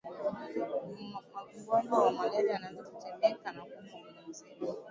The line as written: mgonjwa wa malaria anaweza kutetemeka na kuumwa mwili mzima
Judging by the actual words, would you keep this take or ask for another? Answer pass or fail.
pass